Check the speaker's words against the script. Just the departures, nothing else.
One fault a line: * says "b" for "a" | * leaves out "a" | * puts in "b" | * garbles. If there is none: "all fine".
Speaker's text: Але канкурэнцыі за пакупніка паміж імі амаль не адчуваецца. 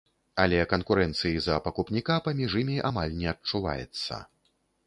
all fine